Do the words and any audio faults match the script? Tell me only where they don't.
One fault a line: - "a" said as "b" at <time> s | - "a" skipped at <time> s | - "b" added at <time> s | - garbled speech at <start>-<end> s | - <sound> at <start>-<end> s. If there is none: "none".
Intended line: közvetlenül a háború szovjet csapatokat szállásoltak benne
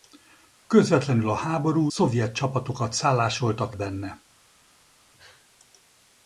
none